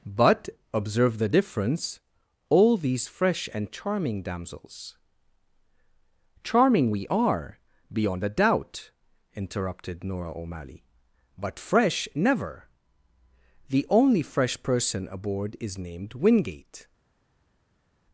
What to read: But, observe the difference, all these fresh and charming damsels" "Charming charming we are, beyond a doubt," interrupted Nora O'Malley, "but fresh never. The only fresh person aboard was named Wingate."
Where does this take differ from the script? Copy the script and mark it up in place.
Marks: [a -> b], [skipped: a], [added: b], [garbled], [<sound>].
But, observe the difference, all these fresh and charming damsels" "Charming [skipped: charming] we are, beyond a doubt," interrupted Nora O'Malley, "but fresh never. The only fresh person aboard [was -> is] named Wingate."